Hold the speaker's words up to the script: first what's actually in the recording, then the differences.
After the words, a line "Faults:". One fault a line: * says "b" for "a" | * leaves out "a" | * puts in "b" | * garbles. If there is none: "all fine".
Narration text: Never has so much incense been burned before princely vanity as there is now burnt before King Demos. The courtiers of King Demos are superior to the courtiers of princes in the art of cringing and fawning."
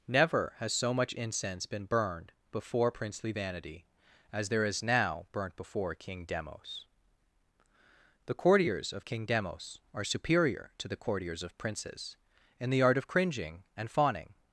Never has so much incense been burned before princely vanity as there is now burnt before King Demos. The courtiers of King Demos are superior to the courtiers of princes in the art of cringing and fawning."
Faults:
all fine